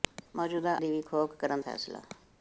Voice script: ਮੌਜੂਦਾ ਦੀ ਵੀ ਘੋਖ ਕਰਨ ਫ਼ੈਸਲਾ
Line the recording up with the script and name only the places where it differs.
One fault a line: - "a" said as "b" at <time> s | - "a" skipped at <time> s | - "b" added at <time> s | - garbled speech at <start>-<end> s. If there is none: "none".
none